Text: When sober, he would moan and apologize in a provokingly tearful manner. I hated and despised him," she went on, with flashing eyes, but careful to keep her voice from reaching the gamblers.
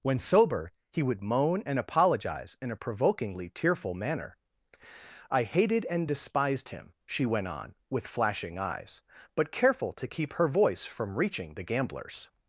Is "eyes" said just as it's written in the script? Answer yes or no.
yes